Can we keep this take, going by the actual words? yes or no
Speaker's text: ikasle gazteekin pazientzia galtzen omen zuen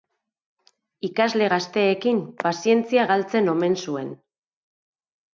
yes